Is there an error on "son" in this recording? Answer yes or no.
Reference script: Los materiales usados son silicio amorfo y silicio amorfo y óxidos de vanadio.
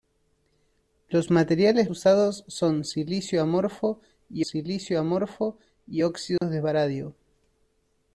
no